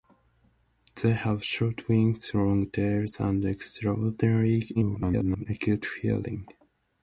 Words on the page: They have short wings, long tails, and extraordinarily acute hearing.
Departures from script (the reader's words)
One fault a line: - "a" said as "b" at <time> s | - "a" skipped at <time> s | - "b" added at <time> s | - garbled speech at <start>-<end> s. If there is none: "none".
- garbled speech at 4.7-5.5 s